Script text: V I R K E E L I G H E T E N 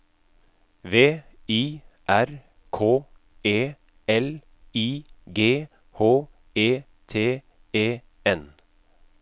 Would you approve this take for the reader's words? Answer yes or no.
no